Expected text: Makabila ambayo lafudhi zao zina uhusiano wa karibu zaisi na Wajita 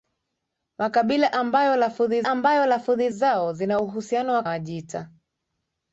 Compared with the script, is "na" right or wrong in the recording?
wrong